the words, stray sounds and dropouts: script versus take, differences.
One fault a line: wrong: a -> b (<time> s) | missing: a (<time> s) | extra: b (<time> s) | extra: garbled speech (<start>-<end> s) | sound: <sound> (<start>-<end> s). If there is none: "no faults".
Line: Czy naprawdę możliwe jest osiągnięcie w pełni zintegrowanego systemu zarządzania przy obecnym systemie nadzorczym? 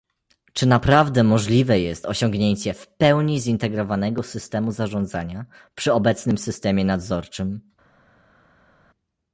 no faults